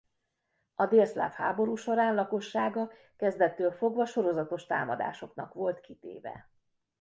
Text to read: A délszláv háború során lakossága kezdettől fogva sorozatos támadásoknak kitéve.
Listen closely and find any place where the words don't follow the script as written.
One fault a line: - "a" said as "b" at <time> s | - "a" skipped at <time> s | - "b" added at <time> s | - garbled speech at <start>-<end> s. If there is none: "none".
- "volt" added at 5.5 s